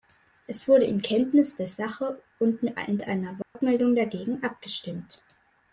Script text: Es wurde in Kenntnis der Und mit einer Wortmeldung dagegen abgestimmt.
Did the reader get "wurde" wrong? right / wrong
right